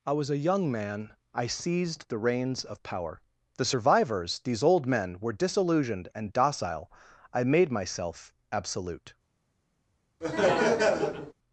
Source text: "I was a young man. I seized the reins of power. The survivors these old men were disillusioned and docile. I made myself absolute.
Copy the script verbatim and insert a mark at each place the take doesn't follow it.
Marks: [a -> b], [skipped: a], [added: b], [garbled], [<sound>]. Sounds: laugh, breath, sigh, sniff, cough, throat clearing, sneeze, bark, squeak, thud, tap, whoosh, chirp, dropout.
"I was a young man. I seized the reins of power. The survivors these old men were disillusioned and docile. I made myself absolute. [laugh]